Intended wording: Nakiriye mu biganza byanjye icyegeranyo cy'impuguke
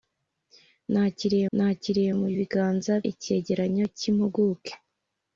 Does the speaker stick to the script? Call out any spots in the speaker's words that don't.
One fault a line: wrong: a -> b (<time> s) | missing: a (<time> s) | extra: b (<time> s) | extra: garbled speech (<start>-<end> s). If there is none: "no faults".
extra: nakiriye (1.5 s)
missing: byanjye (2.9 s)